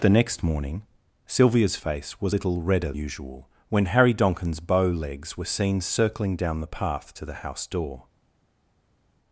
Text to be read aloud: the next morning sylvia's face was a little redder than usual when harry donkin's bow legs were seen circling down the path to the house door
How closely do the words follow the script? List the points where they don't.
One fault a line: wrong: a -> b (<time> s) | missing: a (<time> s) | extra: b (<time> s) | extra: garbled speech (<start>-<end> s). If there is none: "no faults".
missing: a (2.4 s)
missing: than (2.9 s)